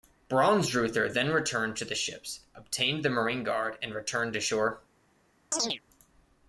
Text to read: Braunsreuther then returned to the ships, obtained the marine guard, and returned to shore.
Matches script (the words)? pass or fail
pass